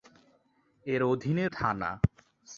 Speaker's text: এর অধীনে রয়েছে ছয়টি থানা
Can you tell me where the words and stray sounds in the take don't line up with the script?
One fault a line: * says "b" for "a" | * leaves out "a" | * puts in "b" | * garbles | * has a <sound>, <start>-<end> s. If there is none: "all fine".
* leaves out "রয়েছে ছয়টি"